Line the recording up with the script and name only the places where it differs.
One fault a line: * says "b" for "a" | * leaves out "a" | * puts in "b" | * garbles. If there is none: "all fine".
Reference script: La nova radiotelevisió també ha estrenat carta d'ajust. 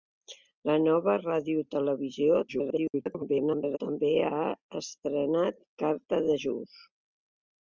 * garbles